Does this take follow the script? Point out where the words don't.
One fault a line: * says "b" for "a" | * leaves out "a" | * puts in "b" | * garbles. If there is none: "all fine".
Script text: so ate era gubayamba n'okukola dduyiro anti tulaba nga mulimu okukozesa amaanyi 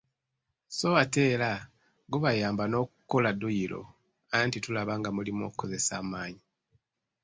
all fine